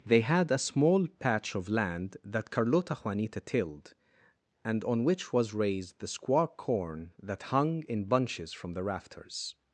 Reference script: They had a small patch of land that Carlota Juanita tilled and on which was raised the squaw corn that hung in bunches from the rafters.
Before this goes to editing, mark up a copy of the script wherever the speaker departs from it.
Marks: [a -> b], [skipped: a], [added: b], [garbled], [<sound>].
They had a small patch of land that Carlota Juanita tilled and on which was raised the squaw corn that hung in bunches from the rafters.